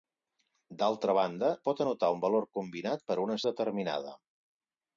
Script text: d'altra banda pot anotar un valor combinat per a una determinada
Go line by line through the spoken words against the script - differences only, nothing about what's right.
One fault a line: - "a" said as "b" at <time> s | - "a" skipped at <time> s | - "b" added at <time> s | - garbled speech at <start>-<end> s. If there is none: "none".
none